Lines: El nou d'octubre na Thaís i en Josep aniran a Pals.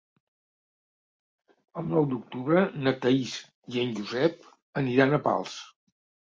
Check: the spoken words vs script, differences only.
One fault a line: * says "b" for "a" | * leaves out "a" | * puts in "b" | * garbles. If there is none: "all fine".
all fine